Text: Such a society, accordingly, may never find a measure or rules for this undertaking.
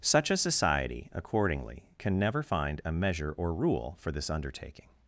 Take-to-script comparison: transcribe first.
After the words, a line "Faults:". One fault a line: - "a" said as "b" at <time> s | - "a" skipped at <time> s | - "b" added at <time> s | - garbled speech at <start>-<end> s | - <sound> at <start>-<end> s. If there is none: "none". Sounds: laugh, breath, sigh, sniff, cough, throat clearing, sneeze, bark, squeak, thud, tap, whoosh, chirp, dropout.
Such a society, accordingly, can never find a measure or rule for this undertaking.
Faults:
- "may" said as "can" at 2.0 s
- "rules" said as "rule" at 3.5 s